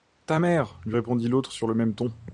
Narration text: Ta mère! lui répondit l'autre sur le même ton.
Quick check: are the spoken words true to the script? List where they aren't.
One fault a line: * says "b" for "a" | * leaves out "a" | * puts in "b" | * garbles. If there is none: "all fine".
all fine